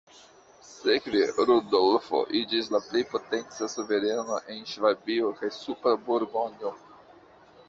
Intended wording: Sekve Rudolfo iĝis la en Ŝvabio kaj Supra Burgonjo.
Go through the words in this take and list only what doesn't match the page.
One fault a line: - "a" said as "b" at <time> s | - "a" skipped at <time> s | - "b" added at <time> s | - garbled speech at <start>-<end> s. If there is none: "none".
- "plej potenca suvereno" added at 2.8 s